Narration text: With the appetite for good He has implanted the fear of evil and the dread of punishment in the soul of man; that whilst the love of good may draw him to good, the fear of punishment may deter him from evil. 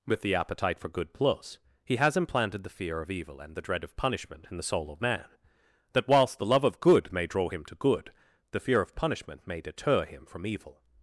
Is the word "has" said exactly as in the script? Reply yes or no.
yes